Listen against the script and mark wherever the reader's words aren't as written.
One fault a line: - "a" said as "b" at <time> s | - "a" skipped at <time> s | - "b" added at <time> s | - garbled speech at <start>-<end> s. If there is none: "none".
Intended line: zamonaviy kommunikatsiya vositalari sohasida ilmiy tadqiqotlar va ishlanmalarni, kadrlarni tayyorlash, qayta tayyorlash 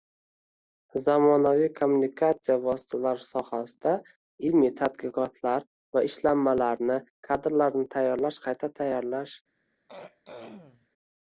none